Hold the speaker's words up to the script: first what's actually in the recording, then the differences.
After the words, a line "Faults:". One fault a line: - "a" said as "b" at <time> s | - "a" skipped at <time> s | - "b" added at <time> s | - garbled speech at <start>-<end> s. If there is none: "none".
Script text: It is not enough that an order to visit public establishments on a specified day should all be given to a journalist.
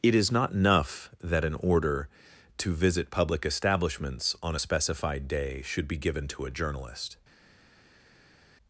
It is not enough that an order to visit public establishments on a specified day should be given to a journalist.
Faults:
- "all" skipped at 5.9 s